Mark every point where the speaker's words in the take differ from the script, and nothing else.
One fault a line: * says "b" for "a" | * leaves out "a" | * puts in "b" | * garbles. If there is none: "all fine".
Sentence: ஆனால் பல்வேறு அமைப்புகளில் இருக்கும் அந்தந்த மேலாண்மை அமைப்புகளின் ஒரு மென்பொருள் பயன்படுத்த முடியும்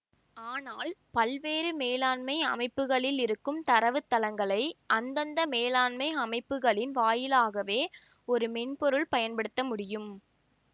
* puts in "மேலாண்மை"
* puts in "தரவுத்தளங்களை"
* puts in "வாயிலாகவே"